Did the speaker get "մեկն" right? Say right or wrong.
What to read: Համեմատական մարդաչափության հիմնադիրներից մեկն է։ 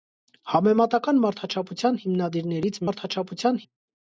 wrong